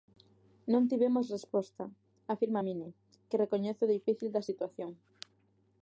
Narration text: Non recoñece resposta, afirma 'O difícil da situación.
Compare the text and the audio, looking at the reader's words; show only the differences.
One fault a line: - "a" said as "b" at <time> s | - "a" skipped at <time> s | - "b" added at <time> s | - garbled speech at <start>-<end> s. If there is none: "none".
- "recoñece" said as "tivemos" at 0.9 s
- "Mini que recoñece" added at 2.6 s